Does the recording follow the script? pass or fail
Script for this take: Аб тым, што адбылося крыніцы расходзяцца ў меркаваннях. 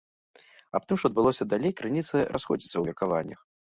fail